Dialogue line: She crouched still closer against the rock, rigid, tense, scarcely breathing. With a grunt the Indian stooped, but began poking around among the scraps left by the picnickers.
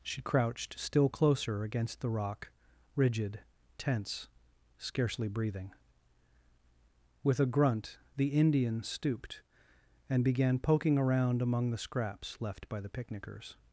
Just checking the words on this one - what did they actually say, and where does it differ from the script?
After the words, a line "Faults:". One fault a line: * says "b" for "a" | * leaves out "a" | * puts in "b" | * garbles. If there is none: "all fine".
She crouched still closer against the rock, rigid, tense, scarcely breathing. With a grunt the Indian stooped, and began poking around among the scraps left by the picnickers.
Faults:
* says "and" for "but"